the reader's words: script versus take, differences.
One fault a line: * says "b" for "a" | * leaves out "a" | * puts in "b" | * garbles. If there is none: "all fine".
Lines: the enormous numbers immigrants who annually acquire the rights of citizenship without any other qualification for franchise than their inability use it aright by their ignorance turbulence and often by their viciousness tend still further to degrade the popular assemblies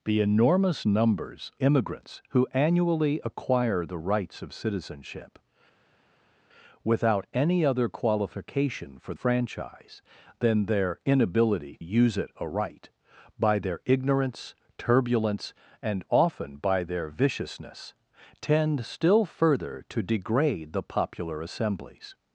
all fine